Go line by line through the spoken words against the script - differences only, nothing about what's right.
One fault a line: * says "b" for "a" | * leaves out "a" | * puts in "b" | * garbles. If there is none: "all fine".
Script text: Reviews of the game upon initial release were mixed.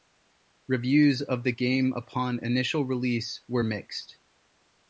all fine